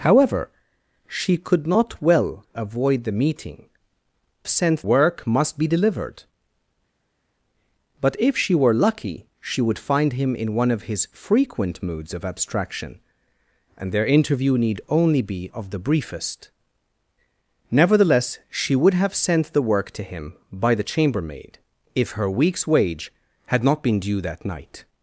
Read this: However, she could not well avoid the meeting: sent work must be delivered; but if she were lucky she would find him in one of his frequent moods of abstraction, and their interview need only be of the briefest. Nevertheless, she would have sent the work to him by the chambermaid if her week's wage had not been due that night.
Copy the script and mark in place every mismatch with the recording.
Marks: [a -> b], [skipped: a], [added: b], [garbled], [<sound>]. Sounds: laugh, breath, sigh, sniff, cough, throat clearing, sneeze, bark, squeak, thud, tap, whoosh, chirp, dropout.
However, she could not well avoid the meeting: sent work must be delivered; but if she were lucky she would find him in one of his frequent moods of abstraction, and their interview need only be of the briefest. Nevertheless, she would have sent the work to him by the chambermaid if her week's wage had not been due that night.